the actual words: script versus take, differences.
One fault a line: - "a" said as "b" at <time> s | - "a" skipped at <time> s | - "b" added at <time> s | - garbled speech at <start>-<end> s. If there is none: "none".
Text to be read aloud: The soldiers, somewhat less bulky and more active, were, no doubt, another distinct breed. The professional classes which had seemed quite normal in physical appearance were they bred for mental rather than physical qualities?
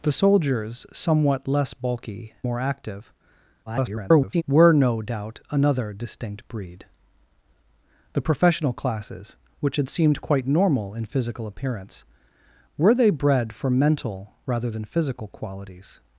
- "and" skipped at 2.3 s
- garbled speech at 3.7-4.4 s